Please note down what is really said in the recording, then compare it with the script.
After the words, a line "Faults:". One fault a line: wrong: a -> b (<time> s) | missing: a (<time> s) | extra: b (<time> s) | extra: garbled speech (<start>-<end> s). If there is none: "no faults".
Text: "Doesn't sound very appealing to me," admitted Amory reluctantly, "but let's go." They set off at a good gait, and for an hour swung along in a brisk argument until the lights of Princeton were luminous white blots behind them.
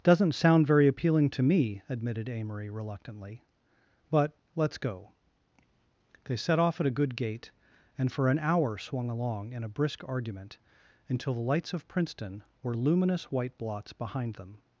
"Doesn't sound very appealing to me," admitted Amory reluctantly, "but let's go." They set off at a good gait, and for an hour swung along in a brisk argument until the lights of Princeton were luminous white blots behind them.
Faults:
no faults